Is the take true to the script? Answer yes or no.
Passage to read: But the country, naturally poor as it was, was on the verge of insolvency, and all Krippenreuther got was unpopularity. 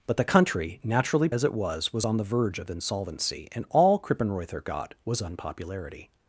no